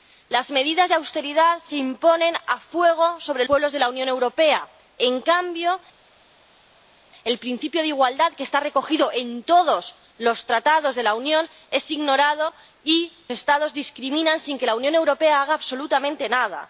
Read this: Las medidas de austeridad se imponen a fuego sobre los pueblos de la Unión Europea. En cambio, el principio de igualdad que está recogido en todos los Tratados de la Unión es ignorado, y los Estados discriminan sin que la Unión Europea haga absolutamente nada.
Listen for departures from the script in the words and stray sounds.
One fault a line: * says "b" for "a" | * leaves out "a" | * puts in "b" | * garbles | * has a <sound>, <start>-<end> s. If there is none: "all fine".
* leaves out "los"
* leaves out "los"